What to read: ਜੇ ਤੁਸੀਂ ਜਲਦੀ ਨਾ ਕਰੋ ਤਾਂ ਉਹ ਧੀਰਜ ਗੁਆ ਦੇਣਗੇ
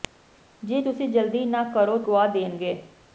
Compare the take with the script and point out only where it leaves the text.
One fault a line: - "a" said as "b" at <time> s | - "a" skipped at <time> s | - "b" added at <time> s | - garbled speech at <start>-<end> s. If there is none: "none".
- "ਤਾਂ ਉਹ ਧੀਰਜ" skipped at 2.0 s